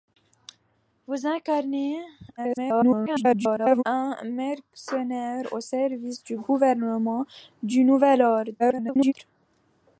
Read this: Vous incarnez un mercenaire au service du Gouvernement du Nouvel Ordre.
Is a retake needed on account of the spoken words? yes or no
yes